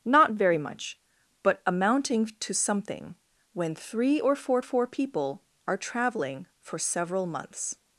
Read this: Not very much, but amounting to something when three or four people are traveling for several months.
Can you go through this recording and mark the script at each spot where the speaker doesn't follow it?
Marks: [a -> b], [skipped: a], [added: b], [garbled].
Not very much, but amounting to something when three or four [added: four] people are traveling for several months.